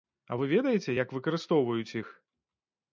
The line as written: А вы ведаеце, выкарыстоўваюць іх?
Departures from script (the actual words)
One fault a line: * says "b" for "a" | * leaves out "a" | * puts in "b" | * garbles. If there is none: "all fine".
* puts in "як"